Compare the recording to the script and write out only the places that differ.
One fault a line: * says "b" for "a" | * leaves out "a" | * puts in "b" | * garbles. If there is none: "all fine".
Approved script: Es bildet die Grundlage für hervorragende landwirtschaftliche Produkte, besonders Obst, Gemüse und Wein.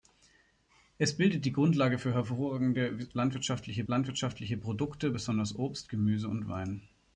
* puts in "landwirtschaftliche"